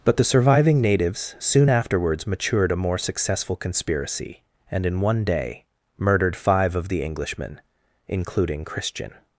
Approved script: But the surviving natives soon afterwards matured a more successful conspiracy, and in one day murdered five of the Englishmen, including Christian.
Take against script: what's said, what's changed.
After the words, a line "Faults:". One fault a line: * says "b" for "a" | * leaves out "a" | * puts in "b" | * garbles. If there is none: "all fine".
But the surviving natives soon afterwards matured a more successful conspiracy, and in one day murdered five of the Englishmen, including Christian.
Faults:
all fine